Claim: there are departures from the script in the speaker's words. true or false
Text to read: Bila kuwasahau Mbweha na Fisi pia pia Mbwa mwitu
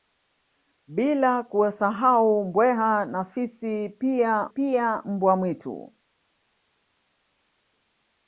false